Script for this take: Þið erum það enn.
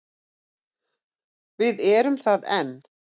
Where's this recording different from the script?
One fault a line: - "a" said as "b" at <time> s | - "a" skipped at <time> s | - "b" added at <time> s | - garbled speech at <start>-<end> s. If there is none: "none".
- "Þið" said as "Við" at 1.6 s